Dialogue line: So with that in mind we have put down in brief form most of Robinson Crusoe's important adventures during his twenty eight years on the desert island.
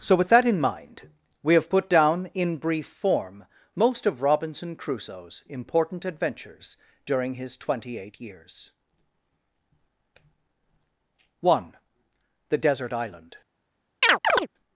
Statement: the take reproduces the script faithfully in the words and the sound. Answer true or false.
false